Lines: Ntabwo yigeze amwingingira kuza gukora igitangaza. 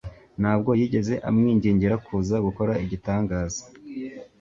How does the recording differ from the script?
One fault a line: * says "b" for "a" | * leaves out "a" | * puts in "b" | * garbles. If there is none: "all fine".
all fine